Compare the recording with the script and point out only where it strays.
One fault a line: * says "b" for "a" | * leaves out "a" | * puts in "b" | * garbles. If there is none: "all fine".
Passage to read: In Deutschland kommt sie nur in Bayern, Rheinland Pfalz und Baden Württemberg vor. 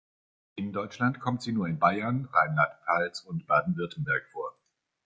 all fine